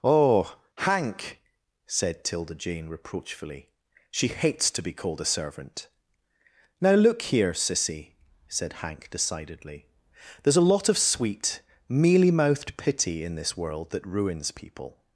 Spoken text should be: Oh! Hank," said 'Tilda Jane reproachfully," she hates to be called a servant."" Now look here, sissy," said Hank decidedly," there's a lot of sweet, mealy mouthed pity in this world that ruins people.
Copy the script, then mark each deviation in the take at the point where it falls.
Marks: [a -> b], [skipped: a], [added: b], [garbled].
Oh! Hank," said 'Tilda Jane reproachfully," she hates to be called a servant."" Now look here, sissy," said Hank decidedly," there's a lot of sweet, mealy mouthed pity in this world that ruins people.